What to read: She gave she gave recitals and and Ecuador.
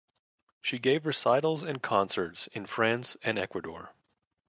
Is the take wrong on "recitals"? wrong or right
wrong